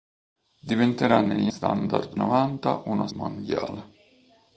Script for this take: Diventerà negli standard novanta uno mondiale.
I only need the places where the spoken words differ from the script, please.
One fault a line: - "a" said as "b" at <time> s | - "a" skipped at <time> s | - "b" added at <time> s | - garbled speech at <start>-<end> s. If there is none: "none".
none